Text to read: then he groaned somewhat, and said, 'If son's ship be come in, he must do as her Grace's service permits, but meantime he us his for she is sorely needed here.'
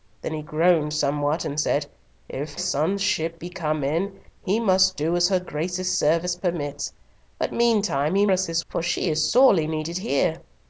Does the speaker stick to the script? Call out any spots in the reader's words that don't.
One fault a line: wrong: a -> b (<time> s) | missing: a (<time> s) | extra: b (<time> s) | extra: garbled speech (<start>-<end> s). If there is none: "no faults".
no faults